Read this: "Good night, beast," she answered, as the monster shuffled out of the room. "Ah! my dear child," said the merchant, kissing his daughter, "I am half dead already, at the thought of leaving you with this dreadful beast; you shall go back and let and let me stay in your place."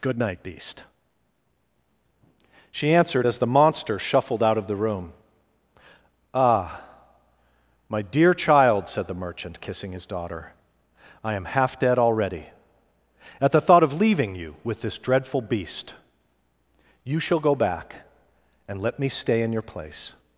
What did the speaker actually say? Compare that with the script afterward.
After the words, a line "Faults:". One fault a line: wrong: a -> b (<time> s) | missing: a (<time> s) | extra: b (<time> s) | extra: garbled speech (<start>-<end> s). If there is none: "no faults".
"Good night, beast," she answered, as the monster shuffled out of the room. "Ah! my dear child," said the merchant, kissing his daughter, "I am half dead already, at the thought of leaving you with this dreadful beast; you shall go back and let me stay in your place."
Faults:
missing: and let (19.0 s)